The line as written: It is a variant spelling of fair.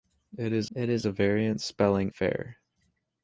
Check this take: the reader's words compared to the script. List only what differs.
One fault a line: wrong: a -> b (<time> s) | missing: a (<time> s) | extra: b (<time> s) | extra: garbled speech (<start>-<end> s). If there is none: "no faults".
extra: it is (0.7 s)
missing: of (2.1 s)